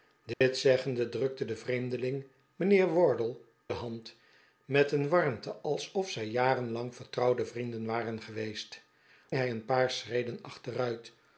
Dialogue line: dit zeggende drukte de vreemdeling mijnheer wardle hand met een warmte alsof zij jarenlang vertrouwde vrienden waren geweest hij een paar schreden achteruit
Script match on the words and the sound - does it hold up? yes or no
no